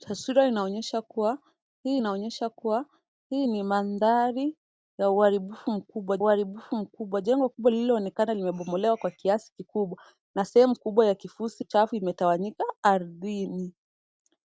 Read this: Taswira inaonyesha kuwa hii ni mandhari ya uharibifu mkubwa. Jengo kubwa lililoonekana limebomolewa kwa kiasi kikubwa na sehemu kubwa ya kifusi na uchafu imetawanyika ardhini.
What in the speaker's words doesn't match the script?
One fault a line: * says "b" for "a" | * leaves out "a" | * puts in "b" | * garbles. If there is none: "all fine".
* puts in "inaonyesha kuwa hii"
* puts in "uharibifu mkubwa"
* leaves out "na"